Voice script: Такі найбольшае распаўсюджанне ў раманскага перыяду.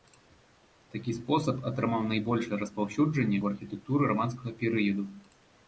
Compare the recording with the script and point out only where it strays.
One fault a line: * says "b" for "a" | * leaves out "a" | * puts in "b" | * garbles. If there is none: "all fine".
* puts in "спосаб атрымаў"
* puts in "архітэктуры"